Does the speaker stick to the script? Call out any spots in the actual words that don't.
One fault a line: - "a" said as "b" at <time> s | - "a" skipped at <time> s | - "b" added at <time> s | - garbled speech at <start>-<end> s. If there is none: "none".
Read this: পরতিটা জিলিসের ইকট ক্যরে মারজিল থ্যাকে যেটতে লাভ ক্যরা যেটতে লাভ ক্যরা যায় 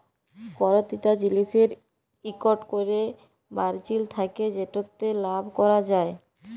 - "যেটতে লাভ ক্যরা" skipped at 5.8 s